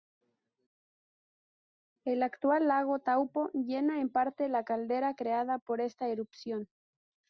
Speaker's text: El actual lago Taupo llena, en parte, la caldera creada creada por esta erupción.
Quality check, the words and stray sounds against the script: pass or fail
fail